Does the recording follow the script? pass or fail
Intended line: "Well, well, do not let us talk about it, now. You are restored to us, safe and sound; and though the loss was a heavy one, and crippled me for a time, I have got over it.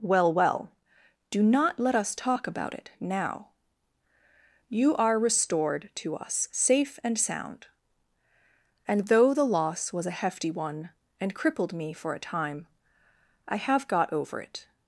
fail